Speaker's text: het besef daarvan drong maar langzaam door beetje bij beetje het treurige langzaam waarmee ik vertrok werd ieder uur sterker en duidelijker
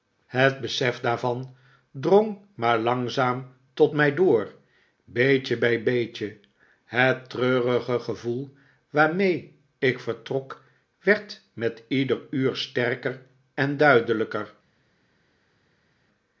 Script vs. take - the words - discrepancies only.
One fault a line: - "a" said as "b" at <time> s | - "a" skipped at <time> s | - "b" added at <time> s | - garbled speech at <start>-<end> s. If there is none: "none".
- "tot mij" added at 3.7 s
- "langzaam" said as "gevoel" at 8.0 s
- "met" added at 11.5 s